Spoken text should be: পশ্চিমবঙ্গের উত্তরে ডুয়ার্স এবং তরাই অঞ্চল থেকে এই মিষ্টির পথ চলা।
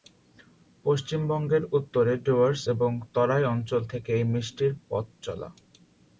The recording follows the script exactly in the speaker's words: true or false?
true